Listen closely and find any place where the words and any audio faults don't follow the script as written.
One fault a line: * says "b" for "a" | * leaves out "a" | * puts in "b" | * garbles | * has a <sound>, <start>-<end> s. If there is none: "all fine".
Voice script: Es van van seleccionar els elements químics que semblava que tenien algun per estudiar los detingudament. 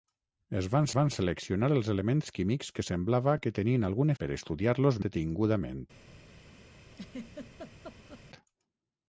* has a laugh, 6.9-8.3 s